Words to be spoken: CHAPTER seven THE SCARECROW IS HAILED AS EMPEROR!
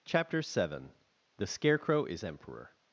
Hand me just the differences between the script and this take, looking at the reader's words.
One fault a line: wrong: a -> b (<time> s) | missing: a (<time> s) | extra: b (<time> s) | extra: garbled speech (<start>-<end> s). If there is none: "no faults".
missing: HAILED AS (2.2 s)